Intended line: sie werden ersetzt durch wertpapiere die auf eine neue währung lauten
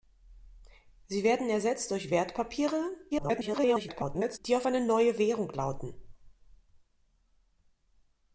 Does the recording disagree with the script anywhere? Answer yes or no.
yes